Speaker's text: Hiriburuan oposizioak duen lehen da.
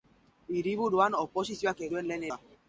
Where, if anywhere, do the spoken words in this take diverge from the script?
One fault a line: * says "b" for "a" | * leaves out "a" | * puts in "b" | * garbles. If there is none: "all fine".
all fine